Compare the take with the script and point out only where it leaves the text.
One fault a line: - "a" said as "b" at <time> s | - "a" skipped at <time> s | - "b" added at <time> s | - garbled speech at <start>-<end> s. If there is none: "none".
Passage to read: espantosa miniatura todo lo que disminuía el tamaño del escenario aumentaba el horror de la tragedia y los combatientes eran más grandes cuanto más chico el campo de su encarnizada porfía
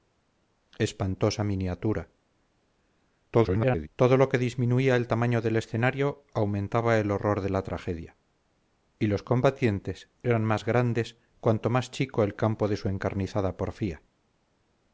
- garbled speech at 3.3-3.9 s